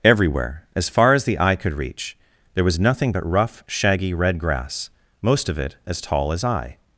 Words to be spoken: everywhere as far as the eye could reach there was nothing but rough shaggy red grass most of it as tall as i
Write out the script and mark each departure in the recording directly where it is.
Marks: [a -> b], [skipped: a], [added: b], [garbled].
everywhere as far as the eye could reach there was nothing but rough shaggy red grass most of it as tall as i